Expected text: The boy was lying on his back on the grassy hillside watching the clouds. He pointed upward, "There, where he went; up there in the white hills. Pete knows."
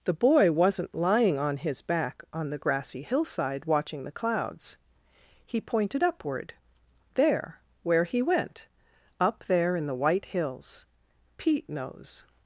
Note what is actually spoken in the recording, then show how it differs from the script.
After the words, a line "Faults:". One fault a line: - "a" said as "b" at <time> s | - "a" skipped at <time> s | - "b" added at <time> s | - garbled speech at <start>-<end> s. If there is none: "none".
The boy wasn't lying on his back on the grassy hillside watching the clouds. He pointed upward, "There, where he went; up there in the white hills. Pete knows."
Faults:
- "was" said as "wasn't" at 0.5 s